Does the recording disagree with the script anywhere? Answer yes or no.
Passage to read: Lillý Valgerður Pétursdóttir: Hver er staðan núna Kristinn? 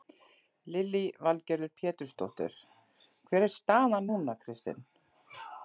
no